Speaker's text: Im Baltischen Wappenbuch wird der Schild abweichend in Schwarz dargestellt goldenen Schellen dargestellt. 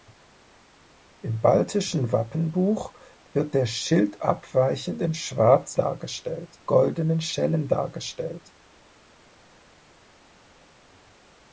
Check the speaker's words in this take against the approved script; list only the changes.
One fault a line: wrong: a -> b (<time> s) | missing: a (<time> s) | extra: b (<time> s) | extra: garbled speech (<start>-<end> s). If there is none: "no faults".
no faults